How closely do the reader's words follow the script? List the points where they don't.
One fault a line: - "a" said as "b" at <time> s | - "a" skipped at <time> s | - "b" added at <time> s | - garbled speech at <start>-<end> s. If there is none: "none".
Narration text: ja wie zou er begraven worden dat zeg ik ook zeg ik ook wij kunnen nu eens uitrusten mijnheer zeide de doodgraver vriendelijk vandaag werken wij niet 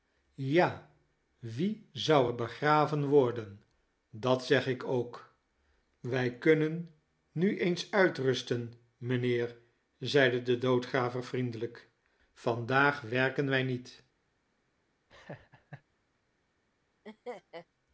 - "zeg ik ook" skipped at 5.3 s